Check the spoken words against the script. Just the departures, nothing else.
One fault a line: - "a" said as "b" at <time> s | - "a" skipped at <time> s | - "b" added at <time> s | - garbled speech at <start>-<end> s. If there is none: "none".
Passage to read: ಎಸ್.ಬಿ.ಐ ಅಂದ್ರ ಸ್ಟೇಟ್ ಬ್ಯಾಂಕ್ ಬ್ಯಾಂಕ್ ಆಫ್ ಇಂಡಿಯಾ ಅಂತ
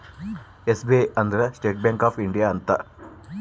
- "ಬ್ಯಾಂಕ್" skipped at 2.1 s